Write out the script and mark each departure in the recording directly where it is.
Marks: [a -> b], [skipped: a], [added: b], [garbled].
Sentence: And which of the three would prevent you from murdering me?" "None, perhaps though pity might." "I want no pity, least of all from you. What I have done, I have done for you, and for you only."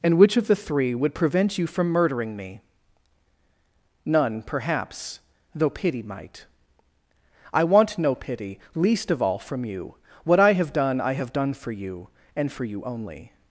And which of the three would prevent you from murdering me?" "None, perhaps though pity might." "I want no pity, least of all from you. What I have done, I have done for you, and for you only."